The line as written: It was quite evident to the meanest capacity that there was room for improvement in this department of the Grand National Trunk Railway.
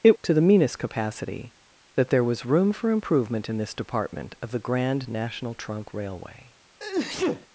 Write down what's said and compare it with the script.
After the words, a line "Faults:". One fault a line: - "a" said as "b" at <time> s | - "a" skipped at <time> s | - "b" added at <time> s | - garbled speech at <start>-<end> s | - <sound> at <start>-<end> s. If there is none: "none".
It to the meanest capacity that there was room for improvement in this department of the Grand National Trunk Railway.
Faults:
- "was quite evident" skipped at 0.2 s
- sneeze at 6.8-7.5 s